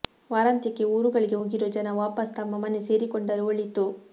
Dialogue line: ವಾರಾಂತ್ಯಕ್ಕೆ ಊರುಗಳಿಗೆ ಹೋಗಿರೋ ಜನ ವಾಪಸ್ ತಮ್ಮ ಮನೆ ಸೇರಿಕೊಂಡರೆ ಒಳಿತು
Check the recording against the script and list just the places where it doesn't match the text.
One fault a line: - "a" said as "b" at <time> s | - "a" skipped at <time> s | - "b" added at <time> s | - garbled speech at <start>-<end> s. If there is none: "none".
none